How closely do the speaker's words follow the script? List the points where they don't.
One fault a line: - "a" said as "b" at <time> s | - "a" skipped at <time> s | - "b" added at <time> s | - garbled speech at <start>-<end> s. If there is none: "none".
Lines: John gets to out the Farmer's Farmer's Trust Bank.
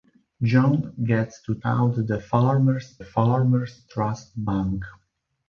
none